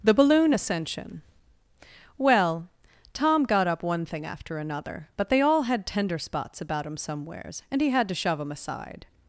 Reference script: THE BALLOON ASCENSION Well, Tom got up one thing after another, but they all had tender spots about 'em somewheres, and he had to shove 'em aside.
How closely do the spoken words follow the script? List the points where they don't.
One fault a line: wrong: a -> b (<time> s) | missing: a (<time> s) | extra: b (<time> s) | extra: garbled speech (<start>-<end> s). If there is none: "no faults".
wrong: em -> him (6.9 s)